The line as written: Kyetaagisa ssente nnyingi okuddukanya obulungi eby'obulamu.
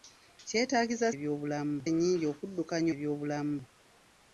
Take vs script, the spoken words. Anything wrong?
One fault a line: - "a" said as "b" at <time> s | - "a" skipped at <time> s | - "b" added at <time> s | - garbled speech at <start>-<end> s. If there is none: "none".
- "ssente" said as "eby'obulamu" at 1.1 s
- "obulungi" skipped at 2.9 s